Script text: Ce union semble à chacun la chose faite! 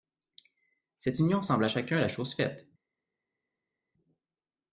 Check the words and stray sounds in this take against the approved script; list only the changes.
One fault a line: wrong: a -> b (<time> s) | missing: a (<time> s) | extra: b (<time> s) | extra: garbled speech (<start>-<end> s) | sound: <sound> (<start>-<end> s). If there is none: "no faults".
wrong: Ce -> Cette (1.0 s)